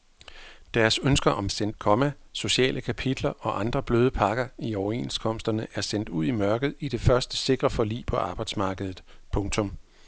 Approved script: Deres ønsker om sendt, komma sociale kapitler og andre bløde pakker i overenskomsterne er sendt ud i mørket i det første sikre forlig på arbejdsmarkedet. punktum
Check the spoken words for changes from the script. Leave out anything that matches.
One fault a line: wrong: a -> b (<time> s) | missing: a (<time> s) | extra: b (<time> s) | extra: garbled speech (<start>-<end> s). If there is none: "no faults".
no faults